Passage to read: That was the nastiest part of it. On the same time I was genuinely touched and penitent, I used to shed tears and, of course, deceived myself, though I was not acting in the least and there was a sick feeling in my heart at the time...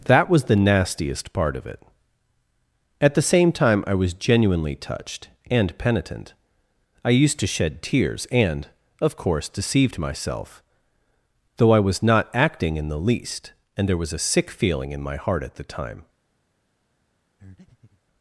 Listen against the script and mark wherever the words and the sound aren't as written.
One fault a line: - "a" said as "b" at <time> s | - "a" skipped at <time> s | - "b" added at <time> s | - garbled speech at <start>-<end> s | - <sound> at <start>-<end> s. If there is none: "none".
- "On" said as "At" at 3.0 s
- breath at 17.4-18.0 s